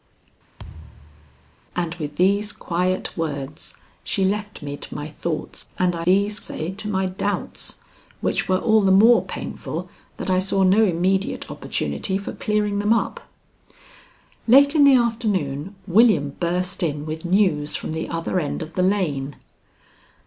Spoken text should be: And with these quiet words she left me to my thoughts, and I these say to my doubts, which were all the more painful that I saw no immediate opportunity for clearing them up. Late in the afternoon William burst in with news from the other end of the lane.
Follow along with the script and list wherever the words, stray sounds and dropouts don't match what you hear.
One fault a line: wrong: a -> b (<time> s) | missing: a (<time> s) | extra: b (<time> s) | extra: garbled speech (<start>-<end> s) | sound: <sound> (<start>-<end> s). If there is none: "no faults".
sound: thud (0.6-1.5 s)